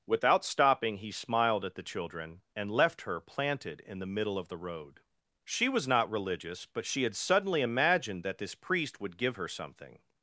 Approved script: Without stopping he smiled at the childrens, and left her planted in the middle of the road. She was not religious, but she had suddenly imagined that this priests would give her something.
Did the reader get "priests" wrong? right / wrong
wrong